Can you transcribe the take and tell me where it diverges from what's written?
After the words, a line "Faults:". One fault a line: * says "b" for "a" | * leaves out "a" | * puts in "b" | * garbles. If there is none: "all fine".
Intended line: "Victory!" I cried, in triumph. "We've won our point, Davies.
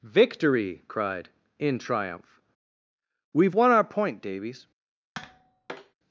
"Victory!" cried, in triumph. "We've won our point, Davies.
Faults:
* leaves out "I"